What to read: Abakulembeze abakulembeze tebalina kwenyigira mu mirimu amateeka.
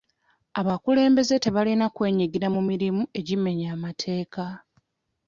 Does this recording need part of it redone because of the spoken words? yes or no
yes